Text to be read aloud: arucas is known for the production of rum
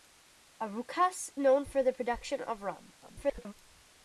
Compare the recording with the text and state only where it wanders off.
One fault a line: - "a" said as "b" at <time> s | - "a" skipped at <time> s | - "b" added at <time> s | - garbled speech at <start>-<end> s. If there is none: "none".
- "is" skipped at 1.3 s
- garbled speech at 3.0-3.5 s